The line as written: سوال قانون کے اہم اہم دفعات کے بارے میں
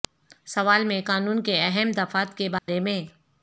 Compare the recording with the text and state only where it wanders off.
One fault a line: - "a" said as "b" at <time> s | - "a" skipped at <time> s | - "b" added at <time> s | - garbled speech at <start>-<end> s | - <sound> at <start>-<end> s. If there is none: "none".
- "میں" added at 0.8 s
- "اہم" skipped at 1.9 s
- dropout at 2.6-2.7 s